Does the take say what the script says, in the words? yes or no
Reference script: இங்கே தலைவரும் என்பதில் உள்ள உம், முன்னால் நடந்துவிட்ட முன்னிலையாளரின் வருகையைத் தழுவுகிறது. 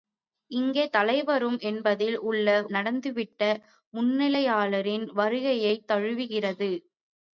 no